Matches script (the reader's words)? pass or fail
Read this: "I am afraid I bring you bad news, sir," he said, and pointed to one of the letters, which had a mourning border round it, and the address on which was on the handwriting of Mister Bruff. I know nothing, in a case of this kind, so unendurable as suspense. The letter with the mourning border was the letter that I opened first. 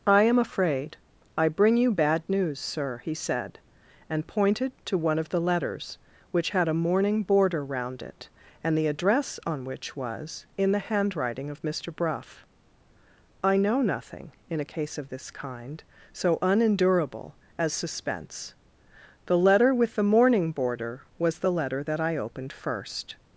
fail